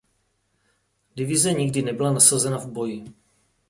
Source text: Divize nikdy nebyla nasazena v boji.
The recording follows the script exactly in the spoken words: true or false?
true